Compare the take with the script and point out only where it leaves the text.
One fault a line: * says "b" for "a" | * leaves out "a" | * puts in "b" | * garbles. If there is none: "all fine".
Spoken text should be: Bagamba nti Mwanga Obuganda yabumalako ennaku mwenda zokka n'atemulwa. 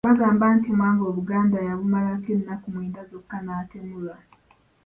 all fine